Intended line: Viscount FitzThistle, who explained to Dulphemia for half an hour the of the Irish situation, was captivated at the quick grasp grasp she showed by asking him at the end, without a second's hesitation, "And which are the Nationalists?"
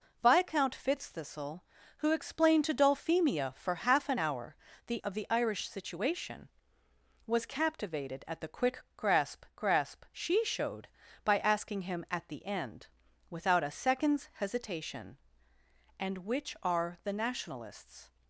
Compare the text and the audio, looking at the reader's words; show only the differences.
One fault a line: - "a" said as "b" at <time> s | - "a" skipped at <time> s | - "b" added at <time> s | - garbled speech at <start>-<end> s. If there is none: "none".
none